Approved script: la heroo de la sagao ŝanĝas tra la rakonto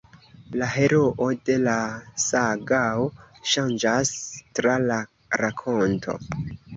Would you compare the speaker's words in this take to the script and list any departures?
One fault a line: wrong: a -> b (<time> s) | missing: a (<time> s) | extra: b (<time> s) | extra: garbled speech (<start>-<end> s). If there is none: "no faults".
no faults